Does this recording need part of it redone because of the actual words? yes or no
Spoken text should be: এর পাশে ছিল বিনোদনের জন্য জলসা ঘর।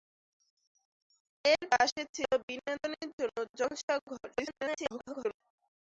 yes